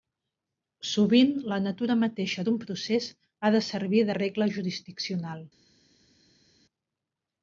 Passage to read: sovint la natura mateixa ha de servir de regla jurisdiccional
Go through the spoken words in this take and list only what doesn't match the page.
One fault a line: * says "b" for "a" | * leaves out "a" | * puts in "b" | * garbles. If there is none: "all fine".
* puts in "d'un procés"